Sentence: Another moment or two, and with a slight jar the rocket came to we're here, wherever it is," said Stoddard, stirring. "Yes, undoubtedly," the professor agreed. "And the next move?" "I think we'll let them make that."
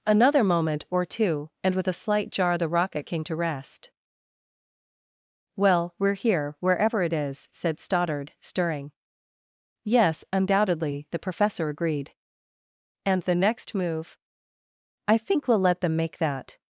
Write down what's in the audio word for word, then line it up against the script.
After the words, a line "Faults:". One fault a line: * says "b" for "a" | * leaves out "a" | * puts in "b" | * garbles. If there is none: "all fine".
Another moment or two, and with a slight jar the rocket came to rest. "Well, we're here, wherever it is," said Stoddard, stirring. "Yes, undoubtedly," the professor agreed. "And the next move?" "I think we'll let them make that."
Faults:
* puts in "rest Well"